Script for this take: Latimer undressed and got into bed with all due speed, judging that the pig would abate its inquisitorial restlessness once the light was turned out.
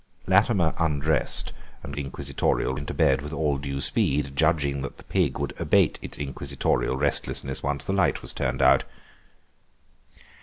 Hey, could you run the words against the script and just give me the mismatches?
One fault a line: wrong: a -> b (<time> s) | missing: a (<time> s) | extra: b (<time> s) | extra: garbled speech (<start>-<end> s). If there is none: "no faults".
wrong: got -> inquisitorial (2.0 s)